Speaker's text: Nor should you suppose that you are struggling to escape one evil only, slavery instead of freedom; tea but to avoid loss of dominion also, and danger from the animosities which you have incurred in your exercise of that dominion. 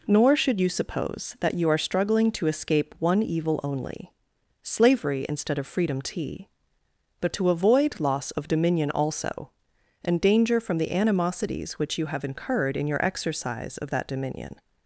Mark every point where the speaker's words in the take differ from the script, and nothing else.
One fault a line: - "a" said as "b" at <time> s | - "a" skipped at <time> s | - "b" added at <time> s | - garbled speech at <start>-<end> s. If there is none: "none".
none